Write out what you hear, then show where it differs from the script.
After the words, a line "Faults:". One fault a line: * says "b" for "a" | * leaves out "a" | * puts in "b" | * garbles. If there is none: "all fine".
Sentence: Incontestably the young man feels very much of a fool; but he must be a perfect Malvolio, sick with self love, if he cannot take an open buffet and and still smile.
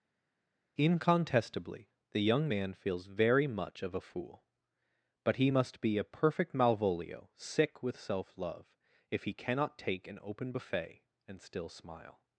Incontestably the young man feels very much of a fool; but he must be a perfect Malvolio, sick with self love, if he cannot take an open buffet and still smile.
Faults:
* leaves out "and"